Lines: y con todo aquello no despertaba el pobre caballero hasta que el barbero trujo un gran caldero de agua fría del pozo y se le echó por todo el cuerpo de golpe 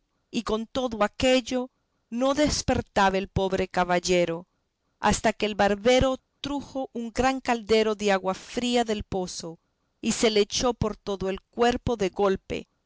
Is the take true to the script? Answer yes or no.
yes